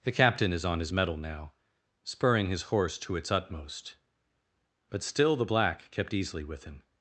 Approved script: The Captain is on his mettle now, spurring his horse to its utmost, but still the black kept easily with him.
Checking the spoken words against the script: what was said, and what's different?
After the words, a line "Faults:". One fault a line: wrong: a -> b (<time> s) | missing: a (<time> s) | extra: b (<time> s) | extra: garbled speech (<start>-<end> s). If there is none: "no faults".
The Captain is on his mettle now, spurring his horse to its utmost, but still the black kept easily with him.
Faults:
no faults